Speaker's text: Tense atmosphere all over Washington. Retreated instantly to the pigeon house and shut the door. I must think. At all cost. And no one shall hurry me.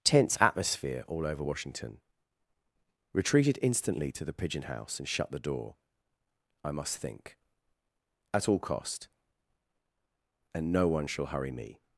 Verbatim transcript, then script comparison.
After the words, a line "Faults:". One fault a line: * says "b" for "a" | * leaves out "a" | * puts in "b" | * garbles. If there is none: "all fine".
Tense atmosphere all over Washington. Retreated instantly to the pigeon house and shut the door. I must think. At all cost. And no one shall hurry me.
Faults:
all fine